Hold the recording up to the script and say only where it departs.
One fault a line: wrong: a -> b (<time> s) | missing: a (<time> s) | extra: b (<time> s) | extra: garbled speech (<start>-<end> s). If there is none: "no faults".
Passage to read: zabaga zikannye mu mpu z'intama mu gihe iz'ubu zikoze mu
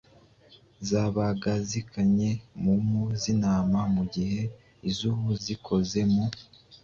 no faults